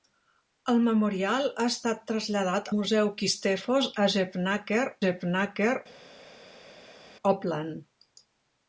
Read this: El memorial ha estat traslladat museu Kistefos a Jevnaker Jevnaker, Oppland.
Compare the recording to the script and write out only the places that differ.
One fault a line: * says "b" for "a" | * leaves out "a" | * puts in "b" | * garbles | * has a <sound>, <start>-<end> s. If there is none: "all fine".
all fine